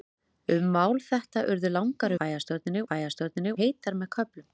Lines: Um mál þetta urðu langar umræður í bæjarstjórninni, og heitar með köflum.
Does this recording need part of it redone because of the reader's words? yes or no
yes